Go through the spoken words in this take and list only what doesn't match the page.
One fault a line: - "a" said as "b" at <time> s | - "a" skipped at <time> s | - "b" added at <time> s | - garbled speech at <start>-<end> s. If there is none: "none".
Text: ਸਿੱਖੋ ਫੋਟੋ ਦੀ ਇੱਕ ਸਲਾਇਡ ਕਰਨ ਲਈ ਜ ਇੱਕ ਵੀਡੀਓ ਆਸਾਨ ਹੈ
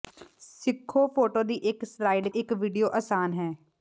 - "ਕਰਨ ਲਈ ਜ" skipped at 2.3 s